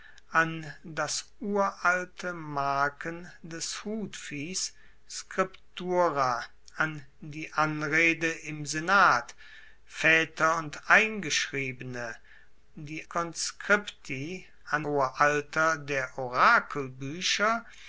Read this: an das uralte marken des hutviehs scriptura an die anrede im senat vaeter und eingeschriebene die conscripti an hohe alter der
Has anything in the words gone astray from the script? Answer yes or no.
no